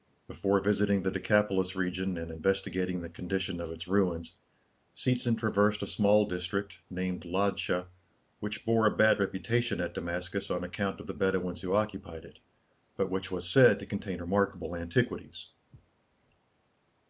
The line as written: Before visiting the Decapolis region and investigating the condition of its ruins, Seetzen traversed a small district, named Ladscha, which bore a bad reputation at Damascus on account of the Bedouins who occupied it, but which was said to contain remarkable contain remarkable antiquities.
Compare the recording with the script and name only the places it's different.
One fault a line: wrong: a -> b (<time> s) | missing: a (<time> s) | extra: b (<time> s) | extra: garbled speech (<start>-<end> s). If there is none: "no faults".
missing: contain remarkable (14.7 s)